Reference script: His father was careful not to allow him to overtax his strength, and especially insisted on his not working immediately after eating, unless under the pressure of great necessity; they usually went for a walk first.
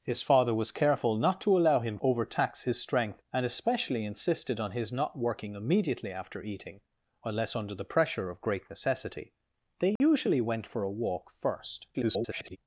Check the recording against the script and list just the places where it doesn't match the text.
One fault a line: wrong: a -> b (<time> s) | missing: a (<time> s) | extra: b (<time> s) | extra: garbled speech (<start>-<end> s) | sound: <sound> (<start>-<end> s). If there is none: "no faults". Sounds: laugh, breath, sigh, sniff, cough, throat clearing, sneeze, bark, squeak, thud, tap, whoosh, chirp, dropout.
missing: to (2.0 s)
sound: dropout (10.0-10.0 s)
extra: garbled speech (11.9-12.6 s)